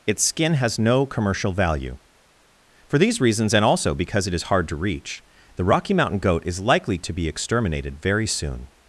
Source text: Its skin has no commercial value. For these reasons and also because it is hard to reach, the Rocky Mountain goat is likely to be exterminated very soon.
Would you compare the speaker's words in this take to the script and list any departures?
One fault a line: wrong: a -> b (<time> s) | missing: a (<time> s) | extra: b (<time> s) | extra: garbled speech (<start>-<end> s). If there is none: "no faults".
no faults